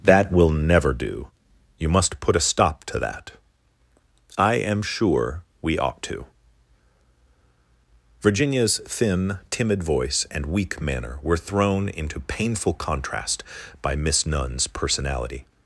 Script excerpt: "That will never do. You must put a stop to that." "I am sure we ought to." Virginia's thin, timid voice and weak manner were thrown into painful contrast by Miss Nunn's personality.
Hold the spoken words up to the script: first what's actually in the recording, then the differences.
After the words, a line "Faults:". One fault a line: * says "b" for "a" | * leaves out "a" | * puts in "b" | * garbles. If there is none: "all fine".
"That will never do. You must put a stop to that." "I am sure we ought to." Virginia's thin, timid voice and weak manner were thrown into painful contrast by Miss Nunn's personality.
Faults:
all fine